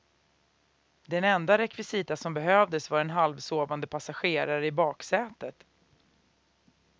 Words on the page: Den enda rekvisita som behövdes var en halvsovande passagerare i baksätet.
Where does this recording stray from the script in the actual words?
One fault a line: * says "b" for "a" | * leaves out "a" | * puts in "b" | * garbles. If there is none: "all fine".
all fine